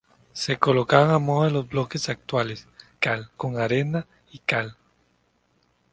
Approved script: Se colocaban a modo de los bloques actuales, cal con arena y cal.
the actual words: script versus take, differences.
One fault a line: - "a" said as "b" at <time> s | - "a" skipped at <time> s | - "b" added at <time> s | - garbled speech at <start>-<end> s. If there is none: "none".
none